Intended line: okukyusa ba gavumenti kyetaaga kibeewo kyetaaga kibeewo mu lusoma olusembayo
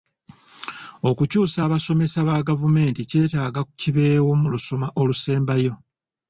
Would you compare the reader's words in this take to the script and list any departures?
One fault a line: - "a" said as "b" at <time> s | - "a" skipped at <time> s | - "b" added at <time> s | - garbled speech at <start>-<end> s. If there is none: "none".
- "abasomesa" added at 1.7 s
- "kyetaaga kibeewo" skipped at 4.3 s